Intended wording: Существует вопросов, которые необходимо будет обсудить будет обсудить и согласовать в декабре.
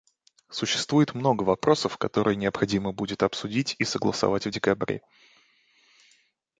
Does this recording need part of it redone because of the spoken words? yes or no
yes